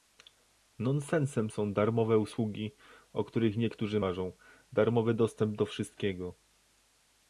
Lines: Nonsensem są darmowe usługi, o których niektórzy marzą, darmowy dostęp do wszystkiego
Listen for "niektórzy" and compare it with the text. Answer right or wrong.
right